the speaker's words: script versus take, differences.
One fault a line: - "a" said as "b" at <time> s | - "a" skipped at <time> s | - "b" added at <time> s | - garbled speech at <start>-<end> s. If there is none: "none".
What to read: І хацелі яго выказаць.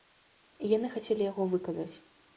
- "яны" added at 0.7 s